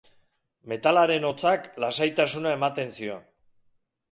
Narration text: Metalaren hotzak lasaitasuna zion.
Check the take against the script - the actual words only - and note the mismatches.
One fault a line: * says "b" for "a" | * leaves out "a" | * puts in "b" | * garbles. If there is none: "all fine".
* puts in "ematen"